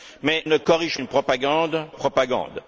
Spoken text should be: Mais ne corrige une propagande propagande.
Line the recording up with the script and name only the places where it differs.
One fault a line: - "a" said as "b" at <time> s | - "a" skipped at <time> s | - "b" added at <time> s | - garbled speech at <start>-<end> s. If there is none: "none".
none